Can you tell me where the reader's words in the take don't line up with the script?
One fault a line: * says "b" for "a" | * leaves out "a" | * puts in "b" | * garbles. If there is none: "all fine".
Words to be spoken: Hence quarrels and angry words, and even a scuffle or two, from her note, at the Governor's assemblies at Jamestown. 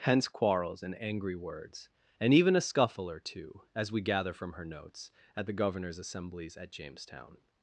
* puts in "as we gather"
* says "notes" for "note"